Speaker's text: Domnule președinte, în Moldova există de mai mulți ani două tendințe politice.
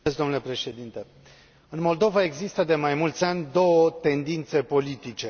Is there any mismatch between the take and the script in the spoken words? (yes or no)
no